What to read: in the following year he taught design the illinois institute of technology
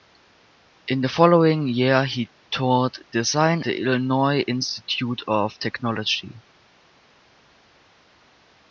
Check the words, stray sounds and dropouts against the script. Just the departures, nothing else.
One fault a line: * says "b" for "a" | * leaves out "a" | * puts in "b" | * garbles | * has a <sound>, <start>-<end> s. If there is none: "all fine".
all fine